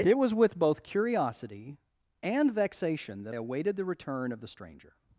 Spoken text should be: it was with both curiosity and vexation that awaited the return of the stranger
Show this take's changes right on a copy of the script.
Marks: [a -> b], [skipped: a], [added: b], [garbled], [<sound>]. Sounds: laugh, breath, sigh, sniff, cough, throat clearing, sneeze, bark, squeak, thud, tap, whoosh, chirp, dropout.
it was with both curiosity and vexation that awaited the return of the stranger